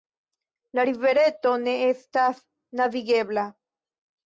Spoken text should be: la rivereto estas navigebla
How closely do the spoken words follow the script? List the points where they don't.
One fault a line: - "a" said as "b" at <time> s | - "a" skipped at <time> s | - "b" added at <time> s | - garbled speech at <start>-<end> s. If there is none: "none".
- "ne" added at 1.7 s